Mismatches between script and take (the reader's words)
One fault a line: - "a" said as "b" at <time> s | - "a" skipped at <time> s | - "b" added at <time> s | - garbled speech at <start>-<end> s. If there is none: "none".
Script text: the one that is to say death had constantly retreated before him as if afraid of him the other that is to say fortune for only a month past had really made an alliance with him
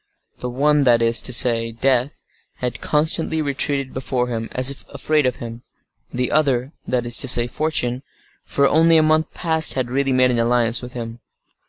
none